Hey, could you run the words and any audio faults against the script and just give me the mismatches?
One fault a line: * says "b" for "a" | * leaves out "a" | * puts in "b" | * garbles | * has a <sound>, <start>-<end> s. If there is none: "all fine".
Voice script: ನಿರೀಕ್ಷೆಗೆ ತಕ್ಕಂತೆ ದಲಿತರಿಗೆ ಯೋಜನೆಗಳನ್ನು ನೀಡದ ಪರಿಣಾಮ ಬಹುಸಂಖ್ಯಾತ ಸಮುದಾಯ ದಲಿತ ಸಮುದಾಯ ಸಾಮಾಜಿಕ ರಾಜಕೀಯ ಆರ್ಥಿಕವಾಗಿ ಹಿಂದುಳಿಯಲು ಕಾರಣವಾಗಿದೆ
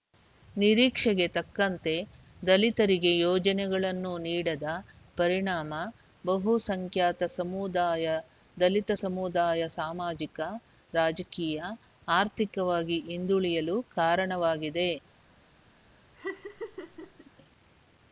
* has a laugh, 16.2-17.3 s